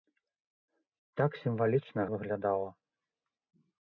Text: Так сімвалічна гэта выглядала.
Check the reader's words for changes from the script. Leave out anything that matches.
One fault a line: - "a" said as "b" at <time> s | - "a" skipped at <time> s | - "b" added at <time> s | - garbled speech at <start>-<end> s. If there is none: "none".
- "гэта" skipped at 2.0 s